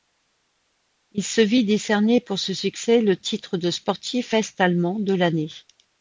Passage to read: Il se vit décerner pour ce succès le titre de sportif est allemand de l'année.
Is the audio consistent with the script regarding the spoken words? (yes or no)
yes